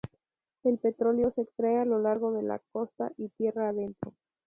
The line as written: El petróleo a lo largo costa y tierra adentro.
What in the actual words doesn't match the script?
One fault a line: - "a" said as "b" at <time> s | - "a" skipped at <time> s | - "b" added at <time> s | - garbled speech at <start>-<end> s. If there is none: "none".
- "se extrae" added at 1.3 s
- "de la" added at 2.3 s